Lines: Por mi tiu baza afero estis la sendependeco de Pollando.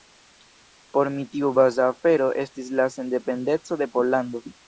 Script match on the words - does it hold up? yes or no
yes